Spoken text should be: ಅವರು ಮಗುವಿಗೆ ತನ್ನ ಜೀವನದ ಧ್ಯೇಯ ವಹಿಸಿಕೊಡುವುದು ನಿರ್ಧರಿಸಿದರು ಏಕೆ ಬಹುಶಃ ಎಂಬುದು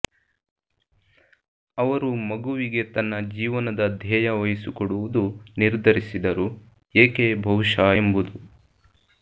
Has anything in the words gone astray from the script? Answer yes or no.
no